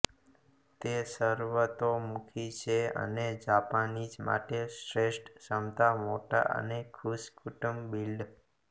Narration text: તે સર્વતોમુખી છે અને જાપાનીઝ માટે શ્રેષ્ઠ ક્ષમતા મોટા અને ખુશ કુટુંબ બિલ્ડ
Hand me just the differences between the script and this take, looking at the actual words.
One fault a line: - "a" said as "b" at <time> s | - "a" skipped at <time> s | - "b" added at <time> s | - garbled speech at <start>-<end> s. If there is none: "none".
none